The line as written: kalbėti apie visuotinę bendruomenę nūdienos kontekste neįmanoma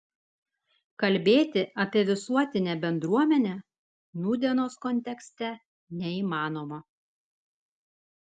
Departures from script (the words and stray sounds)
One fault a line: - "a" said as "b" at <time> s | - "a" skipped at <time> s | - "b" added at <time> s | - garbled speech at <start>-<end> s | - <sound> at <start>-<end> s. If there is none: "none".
none